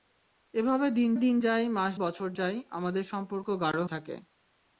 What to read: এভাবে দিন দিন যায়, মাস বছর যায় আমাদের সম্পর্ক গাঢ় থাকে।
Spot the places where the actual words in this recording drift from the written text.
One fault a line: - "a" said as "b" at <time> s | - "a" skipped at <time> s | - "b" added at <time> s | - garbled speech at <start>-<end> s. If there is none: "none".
none